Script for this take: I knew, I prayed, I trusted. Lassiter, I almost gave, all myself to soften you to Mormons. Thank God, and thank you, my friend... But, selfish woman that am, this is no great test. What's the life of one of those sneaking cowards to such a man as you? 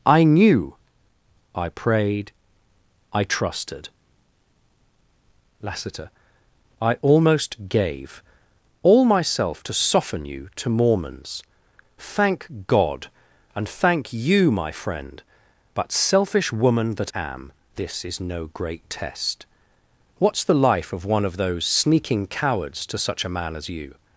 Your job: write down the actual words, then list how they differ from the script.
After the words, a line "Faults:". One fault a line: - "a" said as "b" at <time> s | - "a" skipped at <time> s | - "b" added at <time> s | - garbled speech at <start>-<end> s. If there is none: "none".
I knew, I prayed, I trusted. Lassiter, I almost gave, all myself to soften you to Mormons. Thank God, and thank you, my friend... But, selfish woman that am, this is no great test. What's the life of one of those sneaking cowards to such a man as you?
Faults:
none